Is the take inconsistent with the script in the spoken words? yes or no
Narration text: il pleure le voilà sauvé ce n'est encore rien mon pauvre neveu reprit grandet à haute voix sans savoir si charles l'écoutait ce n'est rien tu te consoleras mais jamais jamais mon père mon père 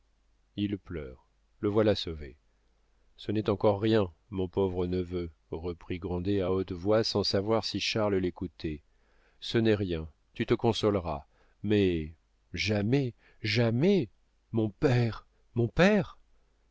no